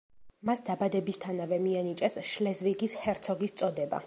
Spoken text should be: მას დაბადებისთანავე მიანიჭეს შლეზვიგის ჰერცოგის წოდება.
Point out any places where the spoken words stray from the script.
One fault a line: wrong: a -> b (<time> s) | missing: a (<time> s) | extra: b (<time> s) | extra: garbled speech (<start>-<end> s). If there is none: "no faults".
no faults